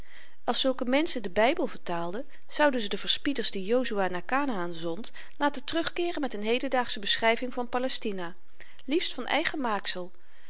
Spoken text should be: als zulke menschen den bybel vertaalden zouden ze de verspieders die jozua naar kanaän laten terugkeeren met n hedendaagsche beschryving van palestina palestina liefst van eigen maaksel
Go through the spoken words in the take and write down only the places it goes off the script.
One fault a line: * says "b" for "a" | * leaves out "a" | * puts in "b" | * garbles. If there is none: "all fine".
* puts in "zond"
* leaves out "palestina"